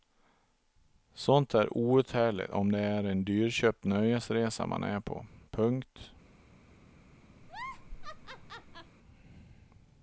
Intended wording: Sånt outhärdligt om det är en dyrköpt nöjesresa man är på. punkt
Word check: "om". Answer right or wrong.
right